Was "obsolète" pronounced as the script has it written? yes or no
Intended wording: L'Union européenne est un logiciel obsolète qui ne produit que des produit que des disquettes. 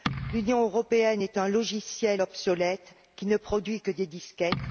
yes